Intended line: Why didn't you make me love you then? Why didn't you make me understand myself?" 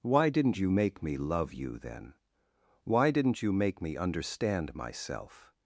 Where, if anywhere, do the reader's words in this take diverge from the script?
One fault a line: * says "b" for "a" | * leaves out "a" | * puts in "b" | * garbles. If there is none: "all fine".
all fine